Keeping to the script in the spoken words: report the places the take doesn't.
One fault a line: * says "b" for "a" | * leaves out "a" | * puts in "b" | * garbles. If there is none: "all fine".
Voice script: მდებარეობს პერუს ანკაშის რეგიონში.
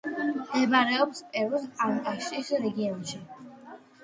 all fine